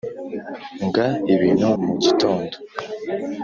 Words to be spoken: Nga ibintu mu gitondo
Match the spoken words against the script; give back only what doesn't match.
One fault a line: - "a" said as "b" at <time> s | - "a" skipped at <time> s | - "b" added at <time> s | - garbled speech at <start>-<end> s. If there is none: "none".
none